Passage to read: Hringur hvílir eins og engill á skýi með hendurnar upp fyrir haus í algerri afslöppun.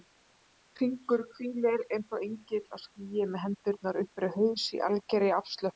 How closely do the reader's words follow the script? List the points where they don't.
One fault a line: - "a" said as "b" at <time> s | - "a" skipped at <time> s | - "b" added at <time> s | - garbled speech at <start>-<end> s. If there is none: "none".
none